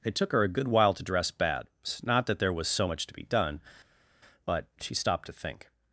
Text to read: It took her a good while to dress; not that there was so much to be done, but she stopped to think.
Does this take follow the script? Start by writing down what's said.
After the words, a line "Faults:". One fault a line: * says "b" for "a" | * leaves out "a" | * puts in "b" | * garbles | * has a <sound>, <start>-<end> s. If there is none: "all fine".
It took her a good while to dress; bad not that there was so much to be done, but she stopped to think.
Faults:
* puts in "bad"